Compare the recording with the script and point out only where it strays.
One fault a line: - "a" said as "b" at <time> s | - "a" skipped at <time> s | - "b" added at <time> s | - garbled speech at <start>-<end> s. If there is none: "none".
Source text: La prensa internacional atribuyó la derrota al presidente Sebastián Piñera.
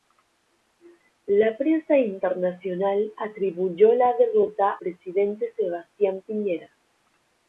- "al" skipped at 4.7 s